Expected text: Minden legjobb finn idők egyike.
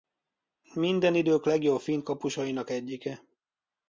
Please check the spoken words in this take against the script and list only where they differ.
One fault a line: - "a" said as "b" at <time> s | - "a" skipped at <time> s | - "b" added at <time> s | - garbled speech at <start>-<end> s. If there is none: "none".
- "idők" added at 1.1 s
- "idők" said as "kapusainak" at 2.0 s